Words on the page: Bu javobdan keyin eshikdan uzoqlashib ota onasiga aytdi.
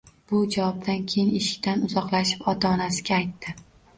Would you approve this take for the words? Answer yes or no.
yes